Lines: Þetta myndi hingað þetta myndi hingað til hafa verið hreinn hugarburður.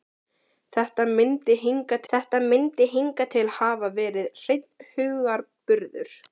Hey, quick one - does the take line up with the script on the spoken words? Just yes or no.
yes